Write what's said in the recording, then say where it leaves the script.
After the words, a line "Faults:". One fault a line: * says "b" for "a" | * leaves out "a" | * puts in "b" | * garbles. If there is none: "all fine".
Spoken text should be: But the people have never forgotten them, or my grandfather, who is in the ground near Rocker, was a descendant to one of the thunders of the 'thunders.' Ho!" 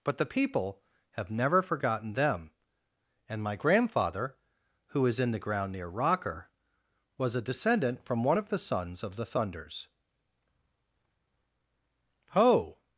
But the people have never forgotten them, and my grandfather, who is in the ground near Rocker, was a descendant from one of the sons of the 'thunders.' Ho!"
Faults:
* says "and" for "or"
* says "from" for "to"
* says "sons" for "thunders"